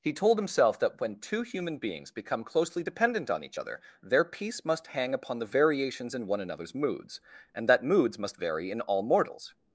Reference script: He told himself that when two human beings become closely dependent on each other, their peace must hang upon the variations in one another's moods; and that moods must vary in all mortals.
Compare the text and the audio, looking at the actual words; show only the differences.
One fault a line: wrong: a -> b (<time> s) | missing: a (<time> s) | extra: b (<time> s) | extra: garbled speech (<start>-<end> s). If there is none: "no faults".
no faults